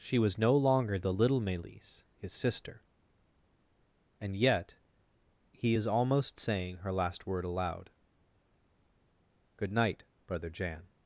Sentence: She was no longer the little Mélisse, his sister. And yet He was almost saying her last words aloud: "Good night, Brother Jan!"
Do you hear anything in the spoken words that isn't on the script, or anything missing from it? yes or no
yes